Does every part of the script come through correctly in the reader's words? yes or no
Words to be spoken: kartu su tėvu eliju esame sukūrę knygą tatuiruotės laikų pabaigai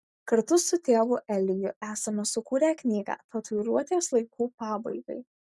yes